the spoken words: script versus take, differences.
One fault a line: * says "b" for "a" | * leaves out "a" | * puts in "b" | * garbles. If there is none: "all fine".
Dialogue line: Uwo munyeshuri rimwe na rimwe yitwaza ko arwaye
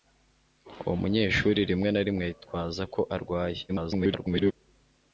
* garbles